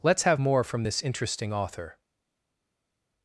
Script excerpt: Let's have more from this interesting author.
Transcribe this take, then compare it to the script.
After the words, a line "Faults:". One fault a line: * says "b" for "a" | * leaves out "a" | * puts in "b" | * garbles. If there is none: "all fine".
Let's have more from this interesting author.
Faults:
all fine